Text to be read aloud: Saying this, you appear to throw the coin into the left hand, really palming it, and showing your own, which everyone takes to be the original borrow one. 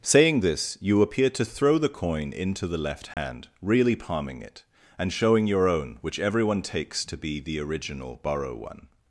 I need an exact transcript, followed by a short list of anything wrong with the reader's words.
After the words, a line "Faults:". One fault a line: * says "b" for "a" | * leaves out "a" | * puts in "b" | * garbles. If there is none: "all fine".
Saying this, you appear to throw the coin into the left hand, really palming it, and showing your own, which everyone takes to be the original borrow one.
Faults:
all fine